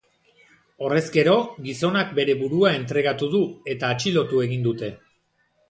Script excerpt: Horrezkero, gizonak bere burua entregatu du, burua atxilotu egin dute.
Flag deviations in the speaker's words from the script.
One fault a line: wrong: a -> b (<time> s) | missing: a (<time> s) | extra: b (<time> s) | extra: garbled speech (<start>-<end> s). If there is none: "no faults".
wrong: burua -> eta (3.8 s)